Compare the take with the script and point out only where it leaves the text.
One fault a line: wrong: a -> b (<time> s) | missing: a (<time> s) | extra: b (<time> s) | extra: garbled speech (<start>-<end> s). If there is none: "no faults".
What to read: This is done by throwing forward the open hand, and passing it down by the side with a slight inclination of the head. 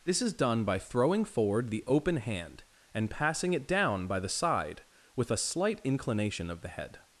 no faults